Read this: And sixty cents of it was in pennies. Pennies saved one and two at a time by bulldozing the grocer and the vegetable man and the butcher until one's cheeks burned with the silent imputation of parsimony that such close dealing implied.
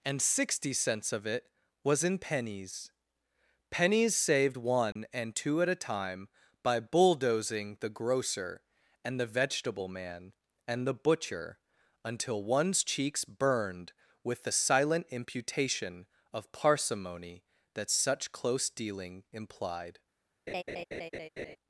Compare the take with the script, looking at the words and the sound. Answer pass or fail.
fail